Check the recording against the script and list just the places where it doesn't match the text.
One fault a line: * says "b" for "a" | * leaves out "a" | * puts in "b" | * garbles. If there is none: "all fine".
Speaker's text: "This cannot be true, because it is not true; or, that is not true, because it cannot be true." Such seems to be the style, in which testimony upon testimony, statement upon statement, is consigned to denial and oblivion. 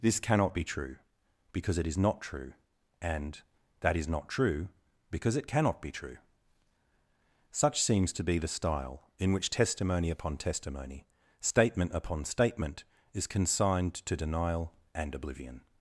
* says "and" for "or"